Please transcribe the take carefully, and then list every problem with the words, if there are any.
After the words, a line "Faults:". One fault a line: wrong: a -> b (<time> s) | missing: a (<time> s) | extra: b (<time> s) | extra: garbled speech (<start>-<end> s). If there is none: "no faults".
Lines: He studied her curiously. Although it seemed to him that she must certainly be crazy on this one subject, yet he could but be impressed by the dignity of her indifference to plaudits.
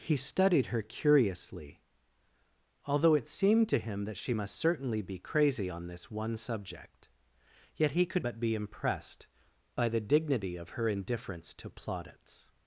He studied her curiously. Although it seemed to him that she must certainly be crazy on this one subject, yet he could but be impressed by the dignity of her indifference to plaudits.
Faults:
no faults